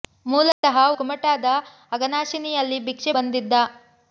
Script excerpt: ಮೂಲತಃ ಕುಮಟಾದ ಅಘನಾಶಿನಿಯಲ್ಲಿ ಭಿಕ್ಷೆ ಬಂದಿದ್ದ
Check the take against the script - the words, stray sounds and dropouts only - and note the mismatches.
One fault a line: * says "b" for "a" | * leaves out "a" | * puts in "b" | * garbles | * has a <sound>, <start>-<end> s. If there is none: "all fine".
* has a dropout, 0.5-0.6 s